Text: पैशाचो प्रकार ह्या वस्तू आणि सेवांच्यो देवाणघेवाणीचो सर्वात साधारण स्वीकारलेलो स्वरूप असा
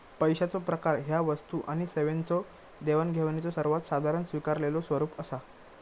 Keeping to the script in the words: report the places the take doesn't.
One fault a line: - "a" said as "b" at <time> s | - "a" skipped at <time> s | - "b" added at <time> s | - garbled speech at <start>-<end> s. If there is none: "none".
none